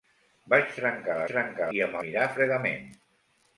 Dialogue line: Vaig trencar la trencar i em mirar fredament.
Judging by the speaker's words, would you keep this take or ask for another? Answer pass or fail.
pass